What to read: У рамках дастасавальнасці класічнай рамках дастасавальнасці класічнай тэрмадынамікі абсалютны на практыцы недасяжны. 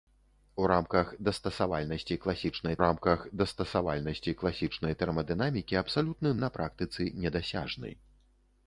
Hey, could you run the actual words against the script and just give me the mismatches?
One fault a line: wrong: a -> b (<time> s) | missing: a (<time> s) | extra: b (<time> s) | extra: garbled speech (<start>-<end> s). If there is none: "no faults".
no faults